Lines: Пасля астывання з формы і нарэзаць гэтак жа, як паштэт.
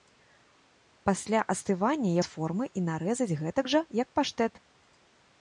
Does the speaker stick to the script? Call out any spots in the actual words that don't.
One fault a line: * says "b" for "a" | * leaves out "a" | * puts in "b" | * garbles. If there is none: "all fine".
all fine